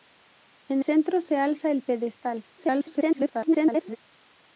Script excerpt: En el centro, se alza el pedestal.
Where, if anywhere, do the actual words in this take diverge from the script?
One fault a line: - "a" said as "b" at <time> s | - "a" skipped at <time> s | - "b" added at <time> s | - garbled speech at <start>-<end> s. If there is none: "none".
- "el" skipped at 0.8 s
- garbled speech at 2.6-4.0 s